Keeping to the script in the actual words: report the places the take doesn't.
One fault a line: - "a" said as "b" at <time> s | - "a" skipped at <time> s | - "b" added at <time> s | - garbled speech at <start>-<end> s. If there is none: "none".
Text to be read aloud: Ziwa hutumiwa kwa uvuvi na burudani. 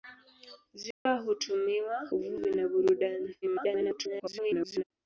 - "kwa" skipped at 2.1 s
- garbled speech at 3.4-4.8 s